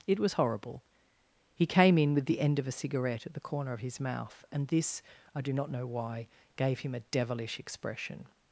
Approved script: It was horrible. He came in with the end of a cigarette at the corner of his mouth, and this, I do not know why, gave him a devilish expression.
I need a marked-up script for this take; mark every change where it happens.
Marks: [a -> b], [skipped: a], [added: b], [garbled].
It was horrible. He came in with the end of a cigarette at the corner of his mouth, and this, I do not know why, gave him a devilish expression.